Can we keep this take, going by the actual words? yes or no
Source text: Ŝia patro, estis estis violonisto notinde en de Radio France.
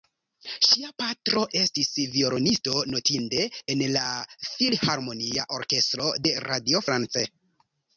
no